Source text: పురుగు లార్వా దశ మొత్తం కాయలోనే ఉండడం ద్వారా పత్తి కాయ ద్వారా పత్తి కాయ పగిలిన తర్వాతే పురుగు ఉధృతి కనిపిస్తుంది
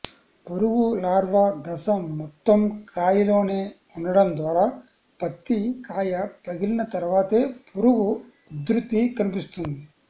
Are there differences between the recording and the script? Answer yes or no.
yes